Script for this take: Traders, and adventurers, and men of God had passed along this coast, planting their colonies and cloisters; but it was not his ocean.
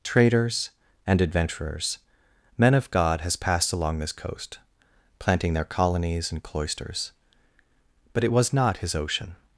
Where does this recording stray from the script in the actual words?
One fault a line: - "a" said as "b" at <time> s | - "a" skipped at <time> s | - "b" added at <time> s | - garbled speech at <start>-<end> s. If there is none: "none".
- "and" skipped at 2.0 s
- "had" said as "has" at 3.2 s